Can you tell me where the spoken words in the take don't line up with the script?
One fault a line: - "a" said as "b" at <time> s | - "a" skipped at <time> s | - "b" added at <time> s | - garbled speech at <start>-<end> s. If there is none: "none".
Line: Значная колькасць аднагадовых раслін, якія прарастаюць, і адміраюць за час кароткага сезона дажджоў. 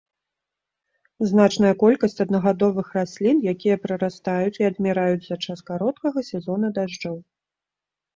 none